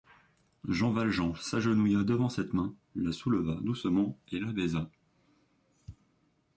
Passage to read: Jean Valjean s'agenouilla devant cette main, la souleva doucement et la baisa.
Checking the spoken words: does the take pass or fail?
pass